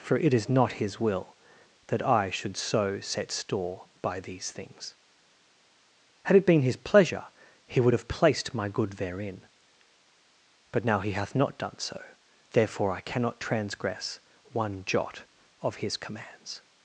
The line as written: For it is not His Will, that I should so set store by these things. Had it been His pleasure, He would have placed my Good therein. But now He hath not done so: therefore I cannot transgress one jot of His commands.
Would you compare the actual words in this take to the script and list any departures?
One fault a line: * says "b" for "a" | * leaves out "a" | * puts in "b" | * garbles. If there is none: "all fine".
all fine